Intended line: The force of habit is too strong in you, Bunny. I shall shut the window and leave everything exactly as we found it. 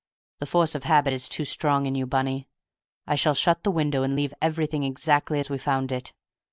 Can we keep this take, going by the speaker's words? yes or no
yes